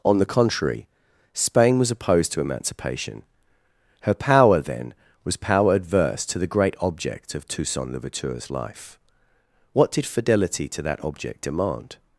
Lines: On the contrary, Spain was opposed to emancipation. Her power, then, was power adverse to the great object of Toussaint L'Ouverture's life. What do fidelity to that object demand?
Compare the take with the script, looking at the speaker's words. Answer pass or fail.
fail